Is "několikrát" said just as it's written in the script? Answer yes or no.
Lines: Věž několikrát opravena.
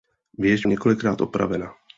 yes